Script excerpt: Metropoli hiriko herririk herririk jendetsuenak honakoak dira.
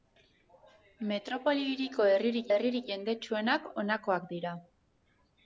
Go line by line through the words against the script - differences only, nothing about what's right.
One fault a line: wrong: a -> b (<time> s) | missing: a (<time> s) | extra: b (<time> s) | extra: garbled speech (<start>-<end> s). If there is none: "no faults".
no faults